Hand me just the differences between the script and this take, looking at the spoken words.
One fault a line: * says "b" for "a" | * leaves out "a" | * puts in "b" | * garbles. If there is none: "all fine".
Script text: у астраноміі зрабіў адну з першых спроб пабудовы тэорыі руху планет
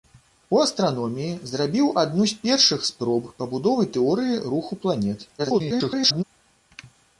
* garbles